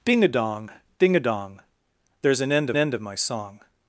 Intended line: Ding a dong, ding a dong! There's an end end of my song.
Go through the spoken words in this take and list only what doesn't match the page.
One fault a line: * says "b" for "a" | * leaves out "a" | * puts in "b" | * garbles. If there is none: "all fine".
all fine